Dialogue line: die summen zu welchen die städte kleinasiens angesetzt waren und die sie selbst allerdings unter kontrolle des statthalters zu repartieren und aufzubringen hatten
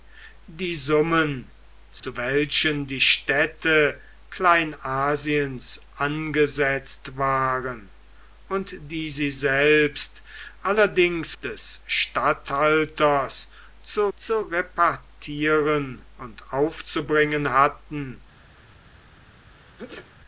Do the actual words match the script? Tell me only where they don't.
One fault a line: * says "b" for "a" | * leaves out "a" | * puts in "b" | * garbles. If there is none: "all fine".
* leaves out "unter kontrolle"
* puts in "zu"